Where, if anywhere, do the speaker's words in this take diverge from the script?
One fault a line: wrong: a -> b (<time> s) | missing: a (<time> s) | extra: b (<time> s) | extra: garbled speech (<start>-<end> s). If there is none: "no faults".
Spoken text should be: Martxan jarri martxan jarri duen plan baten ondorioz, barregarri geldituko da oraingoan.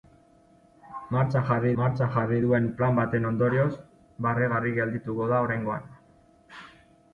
no faults